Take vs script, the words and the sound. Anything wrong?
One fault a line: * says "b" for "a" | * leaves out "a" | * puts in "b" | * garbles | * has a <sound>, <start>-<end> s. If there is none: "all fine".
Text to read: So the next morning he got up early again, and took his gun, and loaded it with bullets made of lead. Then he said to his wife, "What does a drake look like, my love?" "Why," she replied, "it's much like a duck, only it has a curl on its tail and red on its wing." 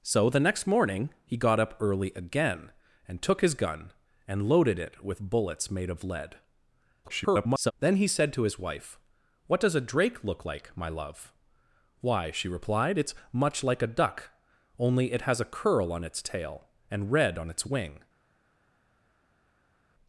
* garbles